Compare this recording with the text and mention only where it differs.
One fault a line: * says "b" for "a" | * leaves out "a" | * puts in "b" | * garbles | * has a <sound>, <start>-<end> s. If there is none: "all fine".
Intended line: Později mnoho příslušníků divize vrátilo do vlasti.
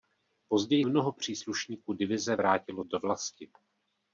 all fine